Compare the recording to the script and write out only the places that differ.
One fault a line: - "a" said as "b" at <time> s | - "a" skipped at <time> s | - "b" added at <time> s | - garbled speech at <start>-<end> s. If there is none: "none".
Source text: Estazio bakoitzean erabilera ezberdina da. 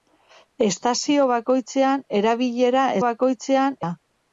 - "ezberdina" said as "bakoitzean" at 3.1 s